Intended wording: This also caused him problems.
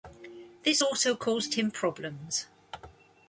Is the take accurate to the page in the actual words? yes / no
yes